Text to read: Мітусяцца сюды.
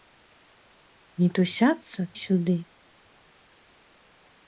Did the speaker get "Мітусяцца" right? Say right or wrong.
right